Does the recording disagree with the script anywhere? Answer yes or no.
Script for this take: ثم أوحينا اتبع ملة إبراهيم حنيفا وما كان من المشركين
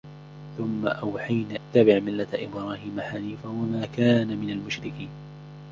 no